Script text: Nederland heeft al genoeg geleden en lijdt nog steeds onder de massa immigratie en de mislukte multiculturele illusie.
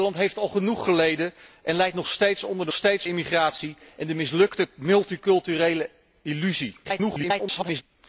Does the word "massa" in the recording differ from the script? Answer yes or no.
yes